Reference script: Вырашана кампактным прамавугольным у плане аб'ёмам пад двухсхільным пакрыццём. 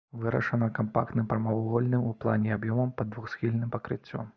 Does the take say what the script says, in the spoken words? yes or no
yes